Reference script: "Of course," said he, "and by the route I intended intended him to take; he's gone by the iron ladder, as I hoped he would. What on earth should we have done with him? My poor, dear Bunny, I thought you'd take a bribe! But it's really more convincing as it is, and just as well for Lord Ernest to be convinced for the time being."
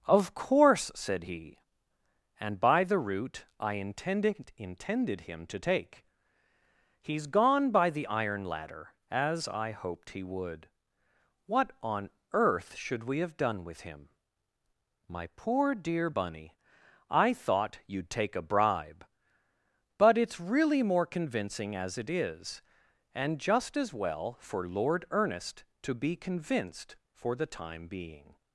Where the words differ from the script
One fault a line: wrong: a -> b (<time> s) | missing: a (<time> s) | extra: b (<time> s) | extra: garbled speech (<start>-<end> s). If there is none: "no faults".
no faults